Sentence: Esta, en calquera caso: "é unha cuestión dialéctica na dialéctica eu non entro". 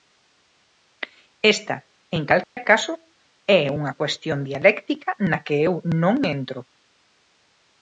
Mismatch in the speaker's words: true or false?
true